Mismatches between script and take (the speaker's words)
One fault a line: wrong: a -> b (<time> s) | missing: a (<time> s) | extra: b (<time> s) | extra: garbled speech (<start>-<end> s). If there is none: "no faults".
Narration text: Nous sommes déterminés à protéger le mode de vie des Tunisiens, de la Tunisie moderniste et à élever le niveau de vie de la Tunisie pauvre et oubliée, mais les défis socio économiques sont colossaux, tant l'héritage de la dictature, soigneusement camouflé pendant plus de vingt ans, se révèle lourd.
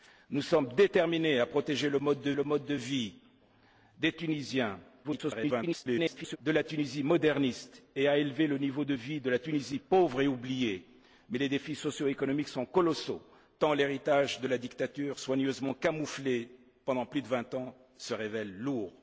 extra: le mode de (2.3 s)
extra: garbled speech (5.0-6.4 s)